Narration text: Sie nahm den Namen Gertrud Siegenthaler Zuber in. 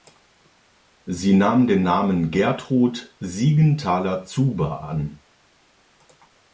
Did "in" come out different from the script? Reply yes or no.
yes